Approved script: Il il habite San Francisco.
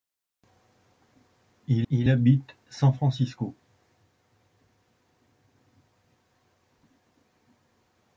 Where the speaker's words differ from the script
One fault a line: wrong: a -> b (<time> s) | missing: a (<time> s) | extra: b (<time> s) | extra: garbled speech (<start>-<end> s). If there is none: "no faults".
no faults